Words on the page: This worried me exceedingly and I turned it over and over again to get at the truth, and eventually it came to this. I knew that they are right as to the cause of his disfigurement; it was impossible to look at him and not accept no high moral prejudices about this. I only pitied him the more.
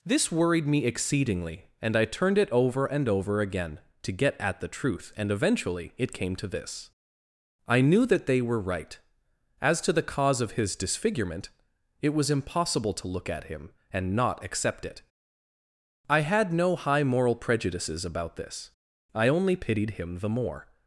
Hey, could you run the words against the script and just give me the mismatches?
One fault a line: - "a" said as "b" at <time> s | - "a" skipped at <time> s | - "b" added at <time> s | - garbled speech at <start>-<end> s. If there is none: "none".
- "are" said as "were" at 8.4 s
- "it I had" added at 14.9 s